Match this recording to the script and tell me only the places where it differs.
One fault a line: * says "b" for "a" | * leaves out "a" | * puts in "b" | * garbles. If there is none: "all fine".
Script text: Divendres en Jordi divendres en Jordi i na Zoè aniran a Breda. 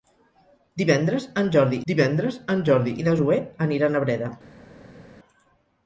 all fine